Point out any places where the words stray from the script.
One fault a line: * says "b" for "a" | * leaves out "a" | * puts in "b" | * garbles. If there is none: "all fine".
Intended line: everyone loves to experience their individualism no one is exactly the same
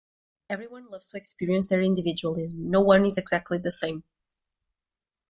all fine